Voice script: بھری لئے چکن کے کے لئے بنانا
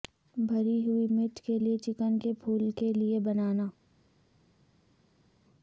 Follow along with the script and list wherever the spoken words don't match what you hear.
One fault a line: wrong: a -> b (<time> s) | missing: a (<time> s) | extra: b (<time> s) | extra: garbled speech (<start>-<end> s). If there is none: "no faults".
extra: ہوئی مرچ کے (0.8 s)
extra: پھول (2.3 s)